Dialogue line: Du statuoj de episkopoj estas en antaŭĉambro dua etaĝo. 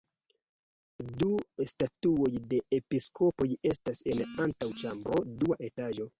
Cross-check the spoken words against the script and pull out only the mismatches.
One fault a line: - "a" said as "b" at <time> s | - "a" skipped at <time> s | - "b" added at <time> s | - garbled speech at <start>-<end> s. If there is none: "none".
none